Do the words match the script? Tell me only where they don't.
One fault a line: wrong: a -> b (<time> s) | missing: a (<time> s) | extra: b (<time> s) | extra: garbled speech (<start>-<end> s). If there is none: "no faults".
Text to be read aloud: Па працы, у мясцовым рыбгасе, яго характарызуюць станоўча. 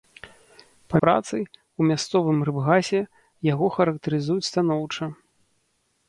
no faults